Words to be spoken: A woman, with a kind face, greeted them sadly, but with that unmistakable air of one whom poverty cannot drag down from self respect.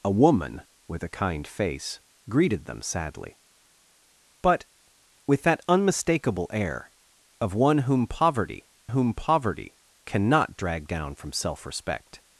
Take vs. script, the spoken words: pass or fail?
fail